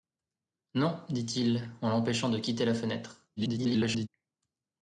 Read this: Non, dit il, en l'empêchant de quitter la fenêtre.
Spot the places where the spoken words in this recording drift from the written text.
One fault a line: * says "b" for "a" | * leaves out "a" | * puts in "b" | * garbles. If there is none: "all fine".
* garbles